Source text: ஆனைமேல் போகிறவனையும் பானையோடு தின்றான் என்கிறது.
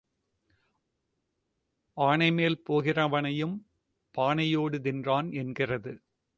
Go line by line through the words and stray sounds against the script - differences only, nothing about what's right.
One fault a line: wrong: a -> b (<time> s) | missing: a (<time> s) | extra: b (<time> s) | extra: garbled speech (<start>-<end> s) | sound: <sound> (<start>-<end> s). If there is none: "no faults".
no faults